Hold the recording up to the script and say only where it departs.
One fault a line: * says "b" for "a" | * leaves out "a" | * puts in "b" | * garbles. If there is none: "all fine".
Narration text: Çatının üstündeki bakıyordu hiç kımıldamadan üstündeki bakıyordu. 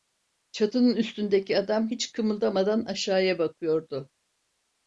* says "adam" for "bakıyordu"
* says "aşağıya" for "üstündeki"